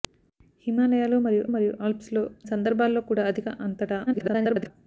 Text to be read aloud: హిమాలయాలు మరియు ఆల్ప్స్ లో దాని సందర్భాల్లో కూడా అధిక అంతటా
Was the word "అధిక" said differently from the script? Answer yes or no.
no